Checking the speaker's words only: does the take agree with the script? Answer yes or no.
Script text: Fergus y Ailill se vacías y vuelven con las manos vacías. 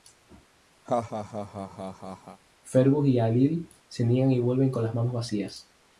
no